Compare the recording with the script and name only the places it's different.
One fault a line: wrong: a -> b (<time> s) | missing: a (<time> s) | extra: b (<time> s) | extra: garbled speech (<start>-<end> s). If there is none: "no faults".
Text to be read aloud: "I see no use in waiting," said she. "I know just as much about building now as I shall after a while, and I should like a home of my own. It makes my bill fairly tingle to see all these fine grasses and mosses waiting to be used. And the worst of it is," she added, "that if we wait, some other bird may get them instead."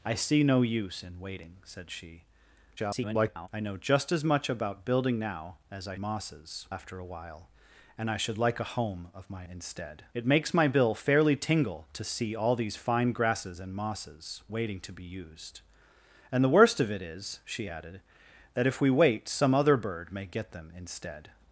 extra: garbled speech (2.8-3.5 s)
wrong: shall -> mosses (6.0 s)
wrong: own -> instead (9.5 s)